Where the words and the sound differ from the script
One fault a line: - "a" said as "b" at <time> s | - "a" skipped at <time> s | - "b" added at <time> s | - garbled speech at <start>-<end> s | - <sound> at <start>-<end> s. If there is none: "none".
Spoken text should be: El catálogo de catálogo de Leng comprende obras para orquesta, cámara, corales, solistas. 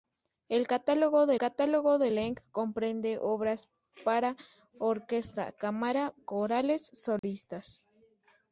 - dropout at 7.2-7.2 s